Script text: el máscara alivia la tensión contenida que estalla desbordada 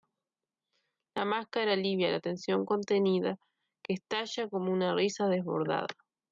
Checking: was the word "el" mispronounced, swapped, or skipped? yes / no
yes